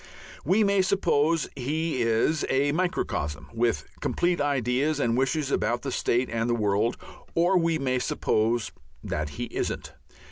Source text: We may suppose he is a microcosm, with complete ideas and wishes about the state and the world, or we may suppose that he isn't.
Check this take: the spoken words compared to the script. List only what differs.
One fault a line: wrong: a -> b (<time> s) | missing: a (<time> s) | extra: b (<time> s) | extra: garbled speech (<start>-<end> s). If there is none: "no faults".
no faults